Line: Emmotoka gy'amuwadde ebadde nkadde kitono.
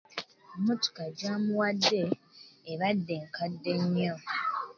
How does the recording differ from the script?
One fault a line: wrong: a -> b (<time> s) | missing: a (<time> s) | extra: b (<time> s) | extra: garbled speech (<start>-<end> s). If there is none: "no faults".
wrong: kitono -> nnyo (3.8 s)